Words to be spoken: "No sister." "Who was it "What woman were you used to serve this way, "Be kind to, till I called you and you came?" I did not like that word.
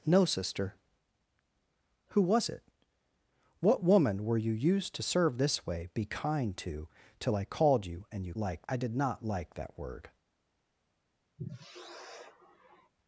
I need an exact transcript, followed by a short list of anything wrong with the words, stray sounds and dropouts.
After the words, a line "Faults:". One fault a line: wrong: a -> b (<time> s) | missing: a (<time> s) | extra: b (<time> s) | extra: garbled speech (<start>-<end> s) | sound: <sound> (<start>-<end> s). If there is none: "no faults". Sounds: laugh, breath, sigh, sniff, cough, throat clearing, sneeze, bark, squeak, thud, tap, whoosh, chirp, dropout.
"No sister." "Who was it "What woman were you used to serve this way, "Be kind to, till I called you and you like?" I did not like that word.
Faults:
wrong: came -> like (8.4 s)
sound: sigh (11.4-12.9 s)